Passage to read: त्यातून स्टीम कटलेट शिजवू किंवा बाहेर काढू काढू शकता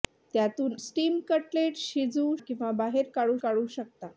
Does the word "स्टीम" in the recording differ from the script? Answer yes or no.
no